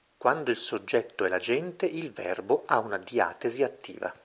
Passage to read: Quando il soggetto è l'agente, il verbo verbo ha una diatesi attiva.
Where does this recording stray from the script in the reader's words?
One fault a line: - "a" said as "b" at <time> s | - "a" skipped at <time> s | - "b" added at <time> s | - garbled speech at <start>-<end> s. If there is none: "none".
- "verbo" skipped at 2.6 s